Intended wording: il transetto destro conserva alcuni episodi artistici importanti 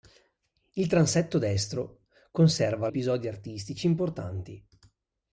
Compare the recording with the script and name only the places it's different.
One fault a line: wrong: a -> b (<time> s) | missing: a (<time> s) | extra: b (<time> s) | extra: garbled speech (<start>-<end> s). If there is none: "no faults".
missing: alcuni (2.9 s)